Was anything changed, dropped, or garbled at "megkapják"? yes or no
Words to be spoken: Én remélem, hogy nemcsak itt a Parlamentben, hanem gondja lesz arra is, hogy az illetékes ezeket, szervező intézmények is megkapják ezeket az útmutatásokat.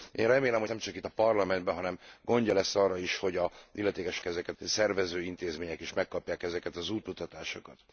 no